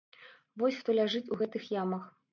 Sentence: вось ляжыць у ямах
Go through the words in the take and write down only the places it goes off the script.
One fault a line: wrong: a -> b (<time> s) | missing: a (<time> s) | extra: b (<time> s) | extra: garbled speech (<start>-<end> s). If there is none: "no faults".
extra: хто (0.8 s)
extra: гэтых (1.4 s)